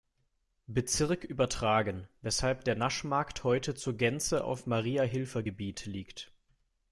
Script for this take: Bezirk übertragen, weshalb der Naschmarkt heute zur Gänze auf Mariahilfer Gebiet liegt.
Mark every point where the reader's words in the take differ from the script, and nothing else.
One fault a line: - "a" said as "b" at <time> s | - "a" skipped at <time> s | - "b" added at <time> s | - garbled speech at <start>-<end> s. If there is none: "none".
none